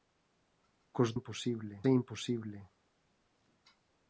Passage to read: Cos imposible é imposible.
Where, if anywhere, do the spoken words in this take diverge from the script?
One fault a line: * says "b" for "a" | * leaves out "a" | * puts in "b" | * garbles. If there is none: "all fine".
all fine